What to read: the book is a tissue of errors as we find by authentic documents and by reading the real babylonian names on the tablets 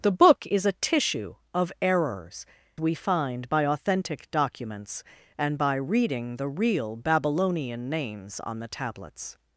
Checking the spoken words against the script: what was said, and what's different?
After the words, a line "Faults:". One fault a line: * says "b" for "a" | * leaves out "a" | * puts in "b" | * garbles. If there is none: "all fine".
the book is a tissue of errors we find by authentic documents and by reading the real babylonian names on the tablets
Faults:
* leaves out "as"